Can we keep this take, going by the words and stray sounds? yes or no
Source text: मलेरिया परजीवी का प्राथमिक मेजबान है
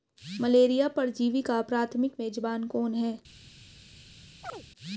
no